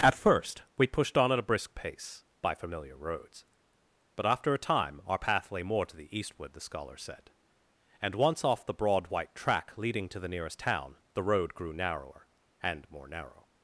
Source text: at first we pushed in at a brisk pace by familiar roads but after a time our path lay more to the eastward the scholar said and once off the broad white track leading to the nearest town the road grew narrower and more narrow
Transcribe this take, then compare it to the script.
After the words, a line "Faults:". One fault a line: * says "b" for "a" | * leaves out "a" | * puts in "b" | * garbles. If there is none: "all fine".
at first we pushed on at a brisk pace by familiar roads but after a time our path lay more to the eastward the scholar said and once off the broad white track leading to the nearest town the road grew narrower and more narrow
Faults:
* says "on" for "in"